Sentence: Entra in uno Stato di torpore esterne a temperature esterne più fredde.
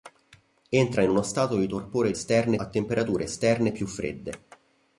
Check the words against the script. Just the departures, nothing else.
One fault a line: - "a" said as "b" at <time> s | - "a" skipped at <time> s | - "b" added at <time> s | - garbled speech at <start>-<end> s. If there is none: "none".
none